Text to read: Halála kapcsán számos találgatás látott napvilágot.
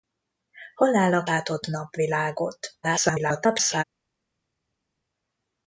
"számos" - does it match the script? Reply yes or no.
no